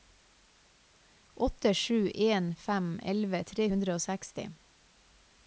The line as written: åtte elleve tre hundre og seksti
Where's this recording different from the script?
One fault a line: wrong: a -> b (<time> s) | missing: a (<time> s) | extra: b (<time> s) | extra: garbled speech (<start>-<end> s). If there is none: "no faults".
extra: sju en fem (1.7 s)